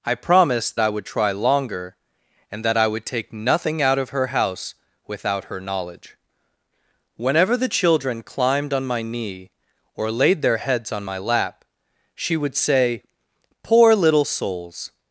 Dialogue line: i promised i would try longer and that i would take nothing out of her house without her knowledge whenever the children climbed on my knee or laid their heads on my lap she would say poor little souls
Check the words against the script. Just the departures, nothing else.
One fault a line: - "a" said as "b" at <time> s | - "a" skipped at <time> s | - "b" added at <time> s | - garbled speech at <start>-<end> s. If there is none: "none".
none